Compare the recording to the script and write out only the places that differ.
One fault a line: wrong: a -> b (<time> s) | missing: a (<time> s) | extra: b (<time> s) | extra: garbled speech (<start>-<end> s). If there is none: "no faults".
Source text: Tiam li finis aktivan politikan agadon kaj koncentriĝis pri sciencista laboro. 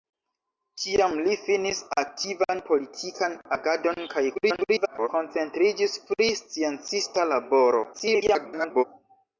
extra: garbled speech (4.3-5.1 s)
extra: garbled speech (7.9-8.8 s)